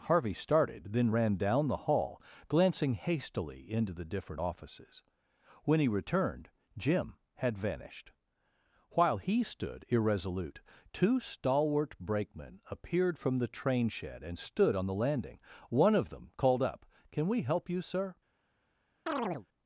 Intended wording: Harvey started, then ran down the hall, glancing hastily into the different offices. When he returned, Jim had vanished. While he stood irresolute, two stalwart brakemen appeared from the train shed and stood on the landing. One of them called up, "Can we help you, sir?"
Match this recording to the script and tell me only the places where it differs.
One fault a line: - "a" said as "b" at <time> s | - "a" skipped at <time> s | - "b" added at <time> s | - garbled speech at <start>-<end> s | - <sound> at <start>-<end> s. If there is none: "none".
- chirp at 19.1-19.5 s